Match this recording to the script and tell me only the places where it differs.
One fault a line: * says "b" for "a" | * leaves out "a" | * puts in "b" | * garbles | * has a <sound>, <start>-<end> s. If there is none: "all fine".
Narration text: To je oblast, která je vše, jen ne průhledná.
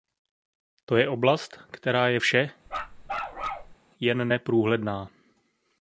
* has a bark, 2.7-3.8 s